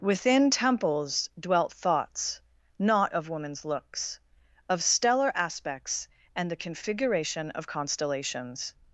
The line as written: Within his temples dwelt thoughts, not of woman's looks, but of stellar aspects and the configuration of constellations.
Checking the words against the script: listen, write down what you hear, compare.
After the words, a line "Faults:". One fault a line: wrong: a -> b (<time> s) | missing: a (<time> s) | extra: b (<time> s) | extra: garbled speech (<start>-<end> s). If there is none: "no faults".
Within temples dwelt thoughts, not of woman's looks, of stellar aspects and the configuration of constellations.
Faults:
missing: his (0.5 s)
missing: but (4.2 s)